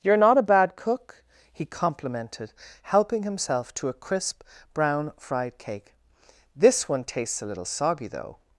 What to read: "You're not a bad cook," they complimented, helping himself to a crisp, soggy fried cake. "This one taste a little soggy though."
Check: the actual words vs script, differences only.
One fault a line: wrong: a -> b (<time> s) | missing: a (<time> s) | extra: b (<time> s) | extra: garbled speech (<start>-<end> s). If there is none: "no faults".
wrong: they -> he (1.5 s)
wrong: soggy -> brown (4.7 s)
wrong: taste -> tastes (7.0 s)